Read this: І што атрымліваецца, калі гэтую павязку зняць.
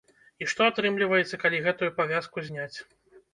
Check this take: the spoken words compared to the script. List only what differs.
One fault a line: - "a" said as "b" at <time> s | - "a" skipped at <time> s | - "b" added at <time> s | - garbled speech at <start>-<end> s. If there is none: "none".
none